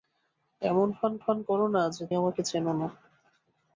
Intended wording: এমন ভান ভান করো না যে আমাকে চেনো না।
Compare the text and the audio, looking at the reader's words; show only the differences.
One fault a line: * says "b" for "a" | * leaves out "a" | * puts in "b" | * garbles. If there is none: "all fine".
all fine